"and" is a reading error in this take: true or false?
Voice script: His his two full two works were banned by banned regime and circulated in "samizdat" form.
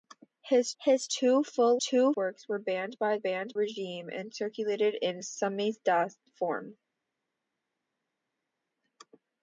false